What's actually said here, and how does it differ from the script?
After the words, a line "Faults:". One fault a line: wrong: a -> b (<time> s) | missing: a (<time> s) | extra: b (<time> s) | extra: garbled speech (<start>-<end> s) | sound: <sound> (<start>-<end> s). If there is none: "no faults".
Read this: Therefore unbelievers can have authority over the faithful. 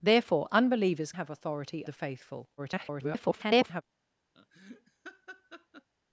Therefore unbelievers have authority the faithful. [garbled]
Faults:
missing: can (1.1 s)
missing: over (1.8 s)
extra: garbled speech (2.6-3.8 s)
sound: laugh (4.4-5.9 s)